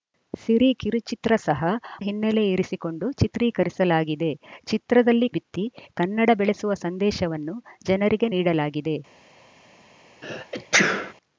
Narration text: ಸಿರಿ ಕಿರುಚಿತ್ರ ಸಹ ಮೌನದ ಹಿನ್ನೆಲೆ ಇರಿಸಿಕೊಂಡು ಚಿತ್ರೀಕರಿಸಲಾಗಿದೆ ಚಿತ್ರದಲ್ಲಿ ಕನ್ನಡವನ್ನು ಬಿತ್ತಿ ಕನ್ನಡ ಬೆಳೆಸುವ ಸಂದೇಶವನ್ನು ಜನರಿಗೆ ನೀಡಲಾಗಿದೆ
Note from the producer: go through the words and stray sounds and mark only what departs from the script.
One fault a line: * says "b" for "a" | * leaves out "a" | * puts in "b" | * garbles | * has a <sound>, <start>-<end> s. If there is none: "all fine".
* leaves out "ಮೌನದ"
* leaves out "ಕನ್ನಡವನ್ನು"
* has a sneeze, 10.2-11.1 s